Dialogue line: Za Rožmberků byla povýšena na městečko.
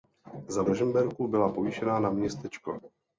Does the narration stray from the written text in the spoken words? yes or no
no